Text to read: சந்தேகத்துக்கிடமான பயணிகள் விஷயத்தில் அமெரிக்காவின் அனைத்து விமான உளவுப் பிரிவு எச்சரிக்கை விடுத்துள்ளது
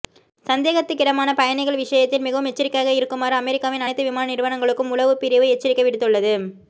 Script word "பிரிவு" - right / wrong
right